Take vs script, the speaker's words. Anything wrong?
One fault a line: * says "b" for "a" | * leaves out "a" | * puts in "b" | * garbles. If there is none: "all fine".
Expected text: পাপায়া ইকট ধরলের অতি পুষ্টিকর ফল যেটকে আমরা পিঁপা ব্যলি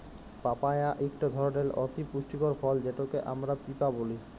all fine